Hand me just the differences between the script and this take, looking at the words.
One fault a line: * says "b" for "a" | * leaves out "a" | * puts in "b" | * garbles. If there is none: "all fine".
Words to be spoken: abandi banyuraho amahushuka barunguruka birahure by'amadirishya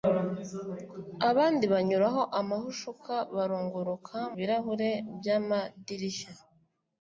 all fine